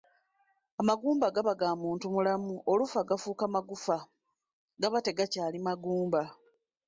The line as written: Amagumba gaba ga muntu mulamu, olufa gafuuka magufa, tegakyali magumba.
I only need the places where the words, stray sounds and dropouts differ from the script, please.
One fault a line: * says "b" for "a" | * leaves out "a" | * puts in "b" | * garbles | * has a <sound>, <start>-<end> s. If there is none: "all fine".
* puts in "gaba"